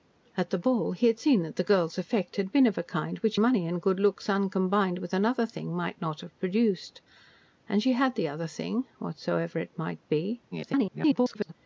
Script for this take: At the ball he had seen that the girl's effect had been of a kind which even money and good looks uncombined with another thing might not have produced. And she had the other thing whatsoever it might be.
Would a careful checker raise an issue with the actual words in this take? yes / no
yes